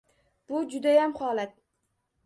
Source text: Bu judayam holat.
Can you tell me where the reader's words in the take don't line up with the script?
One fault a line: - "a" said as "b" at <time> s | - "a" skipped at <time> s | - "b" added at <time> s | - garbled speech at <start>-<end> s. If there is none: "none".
none